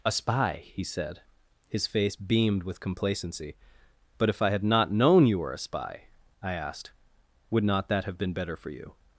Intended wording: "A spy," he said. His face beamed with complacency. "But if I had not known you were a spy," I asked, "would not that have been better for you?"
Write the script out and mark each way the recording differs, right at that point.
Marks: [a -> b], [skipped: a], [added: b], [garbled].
"A spy," he said. His face beamed with complacency. "But if I had not known you were a spy," I asked, "would not that have been better for you?"